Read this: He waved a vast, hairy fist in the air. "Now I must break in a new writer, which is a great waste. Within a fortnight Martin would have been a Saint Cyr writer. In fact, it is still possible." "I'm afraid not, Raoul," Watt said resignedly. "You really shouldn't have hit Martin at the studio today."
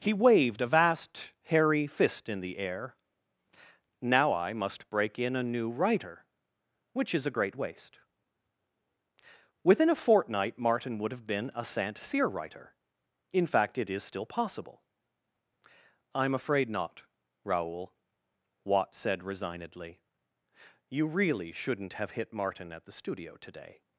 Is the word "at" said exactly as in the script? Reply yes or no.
yes